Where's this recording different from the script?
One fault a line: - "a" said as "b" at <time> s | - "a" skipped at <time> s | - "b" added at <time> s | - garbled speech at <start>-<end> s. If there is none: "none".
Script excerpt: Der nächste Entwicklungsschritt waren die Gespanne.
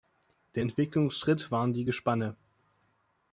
- "nächste" skipped at 0.6 s